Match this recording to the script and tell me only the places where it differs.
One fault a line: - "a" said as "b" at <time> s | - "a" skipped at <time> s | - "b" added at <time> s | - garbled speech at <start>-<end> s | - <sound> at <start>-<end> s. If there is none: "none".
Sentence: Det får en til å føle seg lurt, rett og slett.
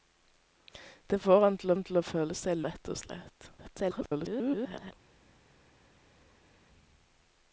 - "en til" added at 1.7 s
- "lurt" skipped at 2.6 s
- garbled speech at 3.6-4.9 s